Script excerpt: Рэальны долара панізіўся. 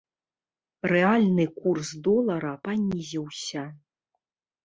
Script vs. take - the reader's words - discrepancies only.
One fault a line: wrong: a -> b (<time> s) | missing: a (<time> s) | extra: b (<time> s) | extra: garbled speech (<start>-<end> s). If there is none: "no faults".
extra: курс (1.6 s)